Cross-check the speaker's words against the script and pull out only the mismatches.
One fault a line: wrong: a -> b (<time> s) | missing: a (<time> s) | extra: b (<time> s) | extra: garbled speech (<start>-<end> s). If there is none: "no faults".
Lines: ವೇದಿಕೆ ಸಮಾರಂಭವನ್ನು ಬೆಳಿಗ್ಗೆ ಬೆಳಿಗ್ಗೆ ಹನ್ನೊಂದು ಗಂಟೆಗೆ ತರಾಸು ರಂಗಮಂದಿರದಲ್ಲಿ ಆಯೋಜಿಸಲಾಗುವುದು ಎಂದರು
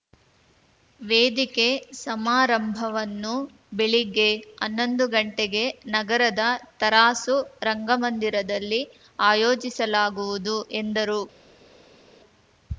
missing: ಬೆಳಿಗ್ಗೆ (4.3 s)
extra: ನಗರದ (5.9 s)